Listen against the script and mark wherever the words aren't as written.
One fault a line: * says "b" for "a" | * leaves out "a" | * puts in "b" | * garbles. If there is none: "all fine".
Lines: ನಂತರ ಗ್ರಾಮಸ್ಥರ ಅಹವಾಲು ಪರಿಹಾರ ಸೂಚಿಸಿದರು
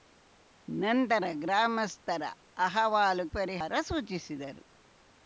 all fine